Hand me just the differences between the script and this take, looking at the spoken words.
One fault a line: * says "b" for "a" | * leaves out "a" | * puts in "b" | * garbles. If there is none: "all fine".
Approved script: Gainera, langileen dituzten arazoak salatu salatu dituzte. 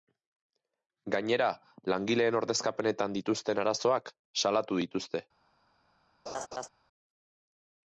* puts in "ordezkapenetan"
* leaves out "salatu"